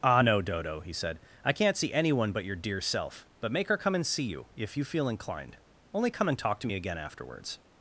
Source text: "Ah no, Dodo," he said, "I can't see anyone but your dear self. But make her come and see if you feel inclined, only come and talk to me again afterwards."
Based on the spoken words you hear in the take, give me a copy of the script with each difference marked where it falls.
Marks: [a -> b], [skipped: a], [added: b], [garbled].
"Ah no, Dodo," he said, "I can't see anyone but your dear self. But make her come and see [added: you] if you feel inclined, only come and talk to me again afterwards."